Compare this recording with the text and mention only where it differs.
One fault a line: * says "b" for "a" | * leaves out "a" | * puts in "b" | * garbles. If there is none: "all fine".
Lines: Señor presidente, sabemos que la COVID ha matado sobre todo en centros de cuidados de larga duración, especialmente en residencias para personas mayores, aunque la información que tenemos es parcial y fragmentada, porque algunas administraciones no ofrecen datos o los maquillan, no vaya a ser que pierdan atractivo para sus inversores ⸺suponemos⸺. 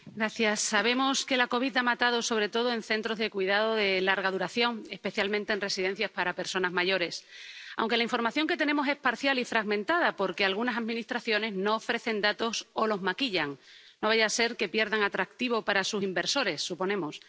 all fine